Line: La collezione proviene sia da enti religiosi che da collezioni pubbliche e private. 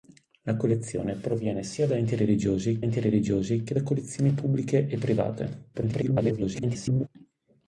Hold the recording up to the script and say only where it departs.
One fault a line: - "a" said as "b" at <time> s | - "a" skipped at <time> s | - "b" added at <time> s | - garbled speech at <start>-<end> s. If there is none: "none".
- "enti religiosi" added at 2.8 s
- garbled speech at 5.7-7.1 s